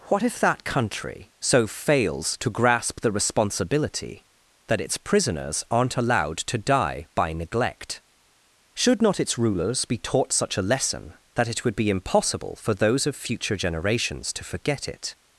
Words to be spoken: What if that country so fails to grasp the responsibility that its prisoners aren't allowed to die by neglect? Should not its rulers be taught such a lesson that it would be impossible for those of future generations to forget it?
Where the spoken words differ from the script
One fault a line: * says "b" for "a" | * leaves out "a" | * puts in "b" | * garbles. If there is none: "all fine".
all fine